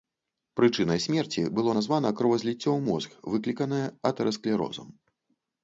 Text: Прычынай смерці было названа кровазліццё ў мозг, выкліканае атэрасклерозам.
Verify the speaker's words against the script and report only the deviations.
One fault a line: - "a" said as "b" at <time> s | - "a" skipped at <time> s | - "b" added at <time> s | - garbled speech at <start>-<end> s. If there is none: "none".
none